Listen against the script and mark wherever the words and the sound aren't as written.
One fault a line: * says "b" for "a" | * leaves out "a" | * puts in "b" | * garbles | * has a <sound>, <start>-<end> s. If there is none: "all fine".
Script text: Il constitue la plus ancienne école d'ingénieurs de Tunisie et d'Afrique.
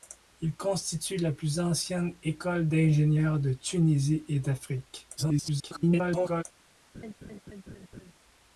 * garbles
* has a laugh, 6.9-8.1 s